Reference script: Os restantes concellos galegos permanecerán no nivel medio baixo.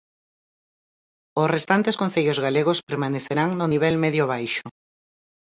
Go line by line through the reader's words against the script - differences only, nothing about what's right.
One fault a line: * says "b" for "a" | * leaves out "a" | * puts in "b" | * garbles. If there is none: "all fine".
all fine